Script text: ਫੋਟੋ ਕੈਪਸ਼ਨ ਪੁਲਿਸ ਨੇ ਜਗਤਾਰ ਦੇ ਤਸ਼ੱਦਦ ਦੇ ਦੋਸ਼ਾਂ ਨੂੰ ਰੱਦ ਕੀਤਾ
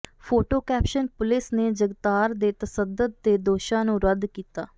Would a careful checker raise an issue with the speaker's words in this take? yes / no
no